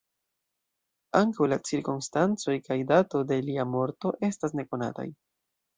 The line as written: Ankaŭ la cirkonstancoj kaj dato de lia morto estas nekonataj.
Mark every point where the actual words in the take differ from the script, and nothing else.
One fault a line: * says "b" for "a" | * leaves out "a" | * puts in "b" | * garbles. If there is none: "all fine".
all fine